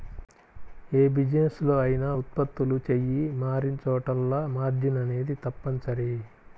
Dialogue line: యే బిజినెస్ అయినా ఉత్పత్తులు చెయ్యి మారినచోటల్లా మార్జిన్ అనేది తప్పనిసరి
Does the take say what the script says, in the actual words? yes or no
no